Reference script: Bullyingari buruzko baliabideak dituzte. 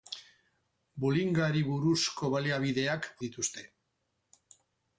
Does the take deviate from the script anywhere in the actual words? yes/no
no